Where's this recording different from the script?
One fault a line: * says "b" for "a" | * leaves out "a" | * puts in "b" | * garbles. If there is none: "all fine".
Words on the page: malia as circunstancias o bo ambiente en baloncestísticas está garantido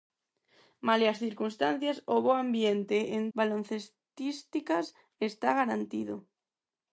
all fine